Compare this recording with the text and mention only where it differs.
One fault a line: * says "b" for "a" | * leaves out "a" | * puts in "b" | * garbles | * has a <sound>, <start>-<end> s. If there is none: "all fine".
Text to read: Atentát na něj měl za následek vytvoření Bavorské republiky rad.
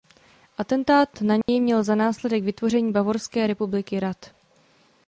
* has a dropout, 1.4-1.5 s